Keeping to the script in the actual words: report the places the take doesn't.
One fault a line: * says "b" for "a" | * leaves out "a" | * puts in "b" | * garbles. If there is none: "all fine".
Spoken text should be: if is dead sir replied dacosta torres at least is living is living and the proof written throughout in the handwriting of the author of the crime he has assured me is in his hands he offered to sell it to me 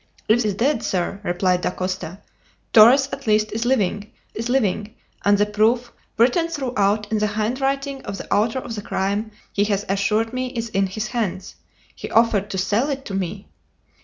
all fine